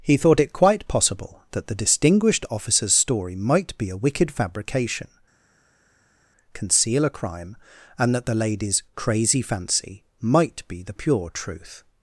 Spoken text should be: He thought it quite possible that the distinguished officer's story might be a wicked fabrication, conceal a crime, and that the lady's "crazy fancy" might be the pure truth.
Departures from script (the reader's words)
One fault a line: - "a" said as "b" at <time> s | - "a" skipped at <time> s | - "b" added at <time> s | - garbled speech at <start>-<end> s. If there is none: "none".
none